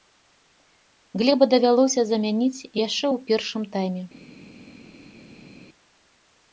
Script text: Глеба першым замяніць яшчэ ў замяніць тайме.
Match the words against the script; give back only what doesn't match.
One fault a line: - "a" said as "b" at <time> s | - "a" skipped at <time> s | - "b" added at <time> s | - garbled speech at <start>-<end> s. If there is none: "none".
- "першым" said as "давялося" at 1.5 s
- "замяніць" said as "першым" at 3.3 s